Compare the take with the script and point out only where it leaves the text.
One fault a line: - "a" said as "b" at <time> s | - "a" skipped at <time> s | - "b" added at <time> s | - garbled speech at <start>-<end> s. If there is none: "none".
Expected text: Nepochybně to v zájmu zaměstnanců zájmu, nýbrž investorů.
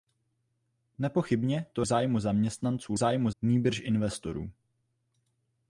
none